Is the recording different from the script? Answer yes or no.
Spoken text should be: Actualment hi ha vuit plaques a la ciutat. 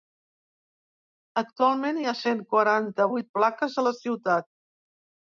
yes